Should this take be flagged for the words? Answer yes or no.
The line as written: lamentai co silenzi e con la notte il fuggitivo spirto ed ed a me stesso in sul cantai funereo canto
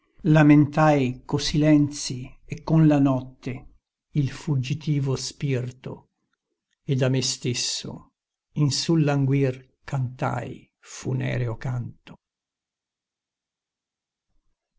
yes